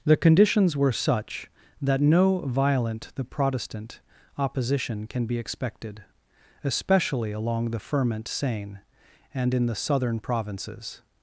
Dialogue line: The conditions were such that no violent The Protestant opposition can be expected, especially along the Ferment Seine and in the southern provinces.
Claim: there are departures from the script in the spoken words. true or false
false